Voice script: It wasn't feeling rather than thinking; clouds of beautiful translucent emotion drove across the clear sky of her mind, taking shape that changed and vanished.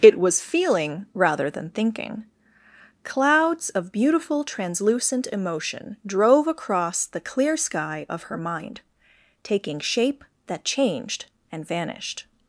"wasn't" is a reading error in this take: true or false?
true